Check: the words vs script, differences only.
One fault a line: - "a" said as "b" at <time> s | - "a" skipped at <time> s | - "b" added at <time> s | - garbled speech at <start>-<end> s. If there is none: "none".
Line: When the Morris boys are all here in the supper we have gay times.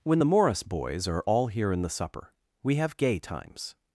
none